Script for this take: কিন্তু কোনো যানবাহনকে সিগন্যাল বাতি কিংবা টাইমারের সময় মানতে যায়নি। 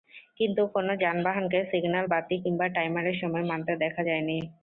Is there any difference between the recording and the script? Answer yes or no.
yes